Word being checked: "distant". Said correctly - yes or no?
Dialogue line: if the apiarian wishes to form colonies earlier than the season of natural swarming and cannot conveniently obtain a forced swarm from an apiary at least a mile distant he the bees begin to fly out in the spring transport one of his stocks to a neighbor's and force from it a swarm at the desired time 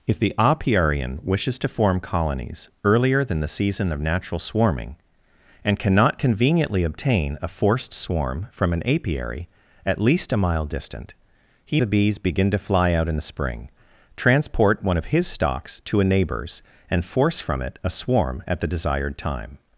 yes